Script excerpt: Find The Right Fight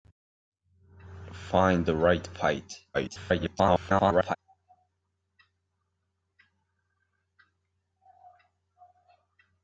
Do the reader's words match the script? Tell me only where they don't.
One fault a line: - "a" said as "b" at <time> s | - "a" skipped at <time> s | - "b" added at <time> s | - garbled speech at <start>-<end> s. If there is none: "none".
- garbled speech at 2.9-4.4 s